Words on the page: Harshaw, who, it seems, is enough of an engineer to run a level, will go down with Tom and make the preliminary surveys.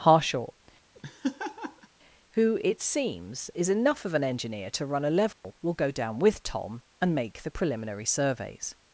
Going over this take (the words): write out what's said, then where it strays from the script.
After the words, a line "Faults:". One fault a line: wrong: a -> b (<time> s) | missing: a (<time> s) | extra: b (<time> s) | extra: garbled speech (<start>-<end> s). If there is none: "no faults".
Harshaw, who, it seems, is enough of an engineer to run a level, will go down with Tom and make the preliminary surveys.
Faults:
no faults